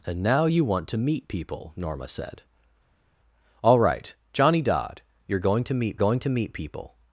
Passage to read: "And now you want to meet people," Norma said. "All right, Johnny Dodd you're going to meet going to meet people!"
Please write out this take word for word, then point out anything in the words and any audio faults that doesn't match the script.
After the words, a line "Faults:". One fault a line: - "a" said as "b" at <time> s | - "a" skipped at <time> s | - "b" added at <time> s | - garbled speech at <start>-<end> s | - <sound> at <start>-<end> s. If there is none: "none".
"And now you want to meet people," Norma said. "All right, Johnny Dodd you're going to meet going to meet people!"
Faults:
none